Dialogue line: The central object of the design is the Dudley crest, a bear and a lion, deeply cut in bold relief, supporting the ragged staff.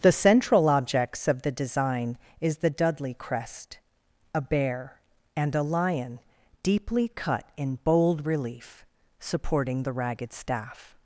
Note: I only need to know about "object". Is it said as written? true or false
false